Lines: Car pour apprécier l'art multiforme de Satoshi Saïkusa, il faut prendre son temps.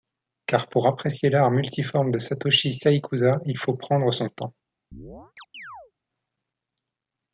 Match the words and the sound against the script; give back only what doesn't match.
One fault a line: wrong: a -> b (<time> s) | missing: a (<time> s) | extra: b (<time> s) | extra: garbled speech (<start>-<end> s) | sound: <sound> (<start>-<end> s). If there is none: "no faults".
sound: chirp (4.9-5.9 s)